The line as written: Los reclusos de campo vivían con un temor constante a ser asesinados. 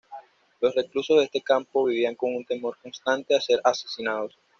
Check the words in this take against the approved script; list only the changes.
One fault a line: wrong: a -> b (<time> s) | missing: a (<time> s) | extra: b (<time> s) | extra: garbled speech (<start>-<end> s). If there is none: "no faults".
extra: este (1.2 s)